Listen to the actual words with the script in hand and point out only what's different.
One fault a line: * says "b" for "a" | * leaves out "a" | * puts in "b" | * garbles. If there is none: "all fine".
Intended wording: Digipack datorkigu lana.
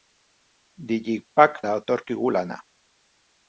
all fine